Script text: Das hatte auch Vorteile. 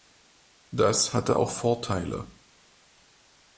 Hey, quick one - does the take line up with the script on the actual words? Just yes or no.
yes